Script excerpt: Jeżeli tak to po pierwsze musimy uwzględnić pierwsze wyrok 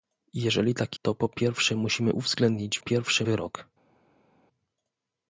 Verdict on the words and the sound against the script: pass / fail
pass